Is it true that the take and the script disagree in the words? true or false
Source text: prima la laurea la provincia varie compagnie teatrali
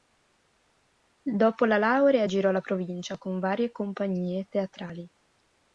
true